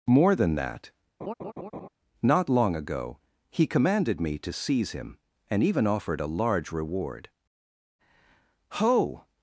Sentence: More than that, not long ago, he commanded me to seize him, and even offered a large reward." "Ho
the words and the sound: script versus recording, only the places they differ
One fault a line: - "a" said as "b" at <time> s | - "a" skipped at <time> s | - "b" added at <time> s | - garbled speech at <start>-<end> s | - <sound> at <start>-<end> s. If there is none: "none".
- laugh at 1.2-1.9 s